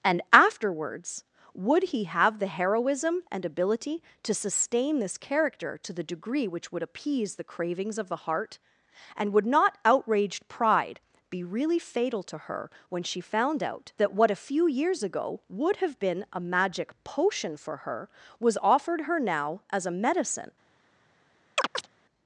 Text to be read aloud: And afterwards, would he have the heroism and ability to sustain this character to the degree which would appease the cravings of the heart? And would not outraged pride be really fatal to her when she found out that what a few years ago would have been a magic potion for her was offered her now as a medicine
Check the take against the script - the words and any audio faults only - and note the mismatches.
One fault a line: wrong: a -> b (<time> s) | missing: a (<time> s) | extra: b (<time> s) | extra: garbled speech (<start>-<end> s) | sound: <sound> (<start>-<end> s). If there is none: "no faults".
sound: chirp (21.6-21.9 s)